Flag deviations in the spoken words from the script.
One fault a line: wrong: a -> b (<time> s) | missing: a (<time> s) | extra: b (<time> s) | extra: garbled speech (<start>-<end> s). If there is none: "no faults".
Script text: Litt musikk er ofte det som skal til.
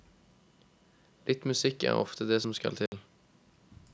no faults